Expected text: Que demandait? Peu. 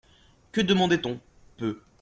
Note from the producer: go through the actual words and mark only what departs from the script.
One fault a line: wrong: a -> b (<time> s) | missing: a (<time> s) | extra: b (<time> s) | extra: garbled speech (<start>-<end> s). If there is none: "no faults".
extra: on (1.1 s)